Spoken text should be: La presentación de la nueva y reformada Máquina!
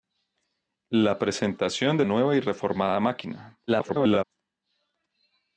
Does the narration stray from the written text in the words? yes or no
yes